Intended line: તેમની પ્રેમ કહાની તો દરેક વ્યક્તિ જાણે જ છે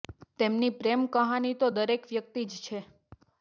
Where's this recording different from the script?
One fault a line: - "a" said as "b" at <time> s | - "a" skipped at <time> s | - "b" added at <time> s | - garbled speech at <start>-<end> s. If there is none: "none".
- "જાણે" skipped at 2.4 s